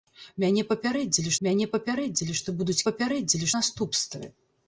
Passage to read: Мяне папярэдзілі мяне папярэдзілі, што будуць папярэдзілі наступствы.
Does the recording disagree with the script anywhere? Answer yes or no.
no